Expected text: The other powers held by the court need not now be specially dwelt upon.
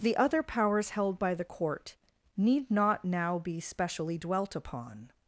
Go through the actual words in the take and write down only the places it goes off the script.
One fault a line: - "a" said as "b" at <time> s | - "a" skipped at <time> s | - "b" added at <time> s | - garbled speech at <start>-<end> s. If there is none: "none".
none